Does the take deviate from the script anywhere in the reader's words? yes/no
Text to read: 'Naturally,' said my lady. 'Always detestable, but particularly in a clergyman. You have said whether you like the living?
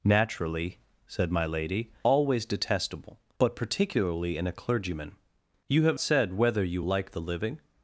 no